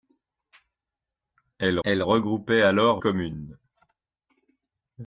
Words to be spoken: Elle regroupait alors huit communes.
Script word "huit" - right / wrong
wrong